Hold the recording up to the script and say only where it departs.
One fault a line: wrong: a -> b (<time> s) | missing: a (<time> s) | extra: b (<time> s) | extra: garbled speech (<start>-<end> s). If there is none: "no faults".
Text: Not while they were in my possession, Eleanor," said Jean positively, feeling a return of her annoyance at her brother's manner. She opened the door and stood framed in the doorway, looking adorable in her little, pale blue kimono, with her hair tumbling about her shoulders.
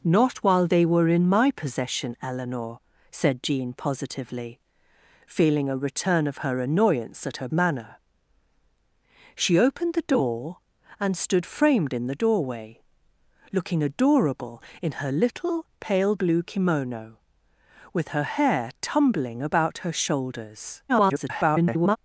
missing: brother's (7.5 s)
extra: garbled speech (20.9-22.0 s)